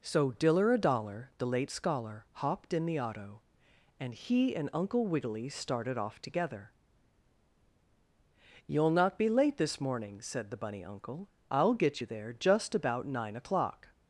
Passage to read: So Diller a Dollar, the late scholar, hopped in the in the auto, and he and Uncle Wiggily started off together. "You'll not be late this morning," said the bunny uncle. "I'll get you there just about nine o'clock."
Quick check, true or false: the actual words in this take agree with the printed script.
false